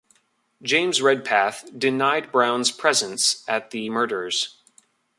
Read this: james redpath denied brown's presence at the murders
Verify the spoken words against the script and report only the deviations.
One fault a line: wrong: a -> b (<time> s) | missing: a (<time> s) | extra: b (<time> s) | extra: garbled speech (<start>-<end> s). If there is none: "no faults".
no faults